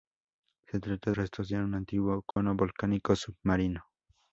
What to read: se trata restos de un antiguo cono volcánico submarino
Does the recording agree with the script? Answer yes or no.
yes